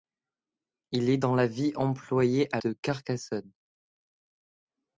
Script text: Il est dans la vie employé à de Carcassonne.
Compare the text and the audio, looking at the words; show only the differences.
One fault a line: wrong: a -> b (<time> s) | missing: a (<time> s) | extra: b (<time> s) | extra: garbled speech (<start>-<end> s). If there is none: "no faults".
no faults